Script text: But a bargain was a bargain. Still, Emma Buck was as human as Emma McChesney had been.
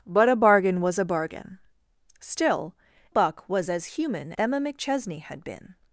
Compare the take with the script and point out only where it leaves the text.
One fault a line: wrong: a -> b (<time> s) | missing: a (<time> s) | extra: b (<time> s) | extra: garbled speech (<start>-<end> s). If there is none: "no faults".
missing: Emma (2.8 s)
missing: as (4.3 s)